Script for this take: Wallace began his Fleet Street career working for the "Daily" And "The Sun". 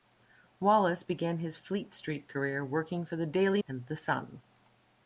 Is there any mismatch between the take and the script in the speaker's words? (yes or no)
no